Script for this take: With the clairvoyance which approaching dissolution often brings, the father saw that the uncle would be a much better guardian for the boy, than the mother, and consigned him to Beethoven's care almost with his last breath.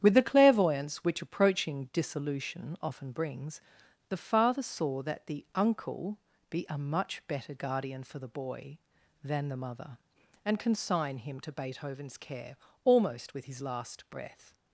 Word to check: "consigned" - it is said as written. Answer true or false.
false